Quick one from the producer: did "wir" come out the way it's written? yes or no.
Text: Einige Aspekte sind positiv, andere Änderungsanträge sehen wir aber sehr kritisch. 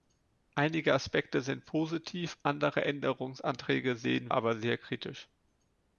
no